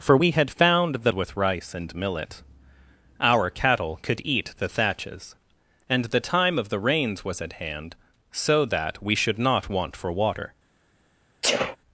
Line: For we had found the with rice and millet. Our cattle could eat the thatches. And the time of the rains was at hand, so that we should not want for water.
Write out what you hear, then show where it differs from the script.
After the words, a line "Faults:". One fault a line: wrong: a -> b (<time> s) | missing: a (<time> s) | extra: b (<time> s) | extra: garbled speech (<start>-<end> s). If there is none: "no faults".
For we had found the with rice and millet. Our cattle could eat the thatches. And the time of the rains was at hand, so that we should not want for water.
Faults:
no faults